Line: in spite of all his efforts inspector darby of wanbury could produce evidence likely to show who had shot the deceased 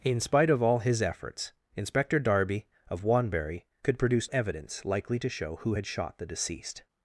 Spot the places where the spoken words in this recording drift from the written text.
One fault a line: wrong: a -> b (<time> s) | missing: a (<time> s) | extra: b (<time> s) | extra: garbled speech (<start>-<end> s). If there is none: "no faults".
no faults